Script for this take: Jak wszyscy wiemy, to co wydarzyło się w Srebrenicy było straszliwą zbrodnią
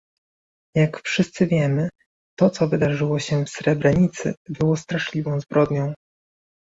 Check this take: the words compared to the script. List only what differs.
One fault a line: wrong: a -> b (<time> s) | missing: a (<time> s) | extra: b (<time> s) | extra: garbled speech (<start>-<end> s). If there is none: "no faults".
no faults